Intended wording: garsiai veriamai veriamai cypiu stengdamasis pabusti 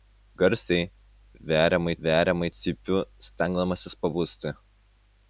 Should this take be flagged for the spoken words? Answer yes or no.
no